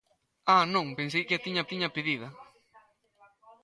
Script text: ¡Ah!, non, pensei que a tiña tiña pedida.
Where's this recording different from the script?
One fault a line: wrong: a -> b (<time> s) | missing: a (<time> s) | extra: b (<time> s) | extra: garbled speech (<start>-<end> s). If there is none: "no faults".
no faults